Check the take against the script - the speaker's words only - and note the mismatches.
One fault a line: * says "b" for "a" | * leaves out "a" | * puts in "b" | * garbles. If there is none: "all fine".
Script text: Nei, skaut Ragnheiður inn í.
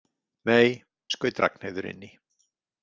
all fine